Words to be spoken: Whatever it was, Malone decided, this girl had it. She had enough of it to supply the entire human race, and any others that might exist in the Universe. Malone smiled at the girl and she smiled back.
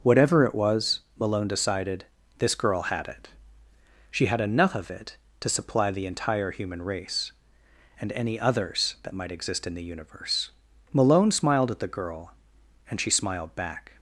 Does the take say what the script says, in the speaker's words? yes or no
yes